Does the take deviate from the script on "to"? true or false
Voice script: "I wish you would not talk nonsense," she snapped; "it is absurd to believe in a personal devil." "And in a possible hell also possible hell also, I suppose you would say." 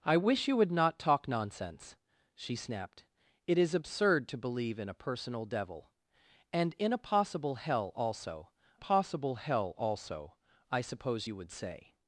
false